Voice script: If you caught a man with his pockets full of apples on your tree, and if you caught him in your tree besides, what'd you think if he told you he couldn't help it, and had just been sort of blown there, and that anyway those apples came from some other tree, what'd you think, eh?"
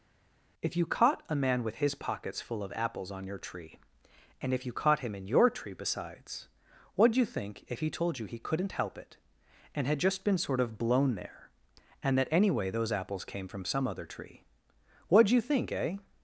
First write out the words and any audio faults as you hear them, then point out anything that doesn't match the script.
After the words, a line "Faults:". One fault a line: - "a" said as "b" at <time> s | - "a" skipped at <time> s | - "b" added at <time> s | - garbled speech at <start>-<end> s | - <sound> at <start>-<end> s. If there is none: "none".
If you caught a man with his pockets full of apples on your tree, and if you caught him in your tree besides, what'd you think if he told you he couldn't help it, and had just been sort of blown there, and that anyway those apples came from some other tree, what'd you think, eh?"
Faults:
none